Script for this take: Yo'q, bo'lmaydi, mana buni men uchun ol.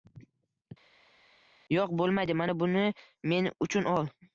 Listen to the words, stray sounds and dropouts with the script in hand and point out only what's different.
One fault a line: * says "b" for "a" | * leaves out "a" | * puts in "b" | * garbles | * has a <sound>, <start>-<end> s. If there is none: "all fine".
all fine